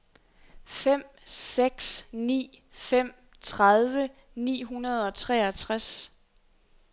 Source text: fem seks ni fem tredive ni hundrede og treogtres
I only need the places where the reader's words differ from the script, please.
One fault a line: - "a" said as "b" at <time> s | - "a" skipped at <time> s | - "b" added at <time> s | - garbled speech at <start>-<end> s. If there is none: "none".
none